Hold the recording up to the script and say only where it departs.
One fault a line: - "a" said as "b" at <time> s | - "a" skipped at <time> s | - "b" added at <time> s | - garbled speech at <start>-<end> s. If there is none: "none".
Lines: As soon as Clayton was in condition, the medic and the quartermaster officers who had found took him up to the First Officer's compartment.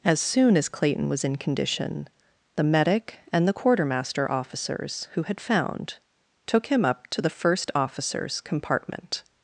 none